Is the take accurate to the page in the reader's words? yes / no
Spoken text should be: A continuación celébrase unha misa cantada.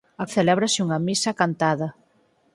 no